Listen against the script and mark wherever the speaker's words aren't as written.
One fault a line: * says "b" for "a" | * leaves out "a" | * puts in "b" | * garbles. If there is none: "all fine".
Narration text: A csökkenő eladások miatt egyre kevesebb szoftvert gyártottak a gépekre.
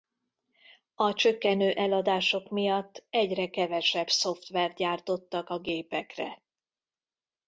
all fine